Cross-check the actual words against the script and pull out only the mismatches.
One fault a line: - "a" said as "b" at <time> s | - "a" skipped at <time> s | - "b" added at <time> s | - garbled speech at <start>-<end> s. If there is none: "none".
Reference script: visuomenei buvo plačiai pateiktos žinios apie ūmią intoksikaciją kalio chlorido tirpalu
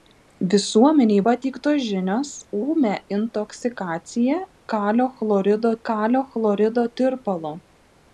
- "buvo plačiai" skipped at 1.2 s
- "apie" skipped at 2.3 s
- "kalio chlorido" added at 5.9 s